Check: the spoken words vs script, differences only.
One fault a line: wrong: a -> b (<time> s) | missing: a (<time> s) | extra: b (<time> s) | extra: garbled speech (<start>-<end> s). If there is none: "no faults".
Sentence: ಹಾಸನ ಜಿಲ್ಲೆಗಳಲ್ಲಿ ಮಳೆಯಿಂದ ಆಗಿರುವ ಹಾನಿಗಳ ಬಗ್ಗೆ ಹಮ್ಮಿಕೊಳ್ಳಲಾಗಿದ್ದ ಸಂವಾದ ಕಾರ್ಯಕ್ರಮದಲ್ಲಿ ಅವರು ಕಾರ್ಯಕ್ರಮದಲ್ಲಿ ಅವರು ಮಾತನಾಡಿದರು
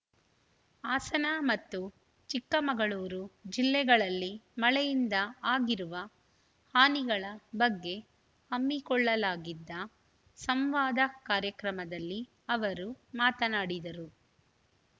extra: ಮತ್ತು ಚಿಕ್ಕಮಗಳೂರು (1.4 s)
missing: ಕಾರ್ಯಕ್ರಮದಲ್ಲಿ ಅವರು (12.9 s)